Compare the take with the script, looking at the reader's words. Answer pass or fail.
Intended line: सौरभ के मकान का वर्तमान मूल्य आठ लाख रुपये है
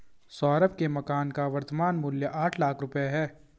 pass